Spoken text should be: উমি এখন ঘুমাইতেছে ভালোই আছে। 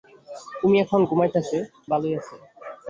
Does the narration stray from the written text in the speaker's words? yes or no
no